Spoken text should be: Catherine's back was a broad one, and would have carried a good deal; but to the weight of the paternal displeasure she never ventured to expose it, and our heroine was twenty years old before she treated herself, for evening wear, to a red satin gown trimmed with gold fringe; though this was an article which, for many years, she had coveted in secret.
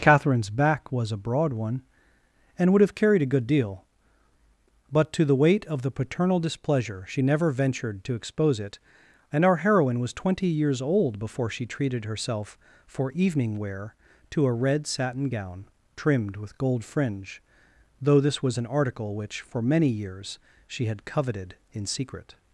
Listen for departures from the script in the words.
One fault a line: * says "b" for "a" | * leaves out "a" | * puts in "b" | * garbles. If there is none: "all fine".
all fine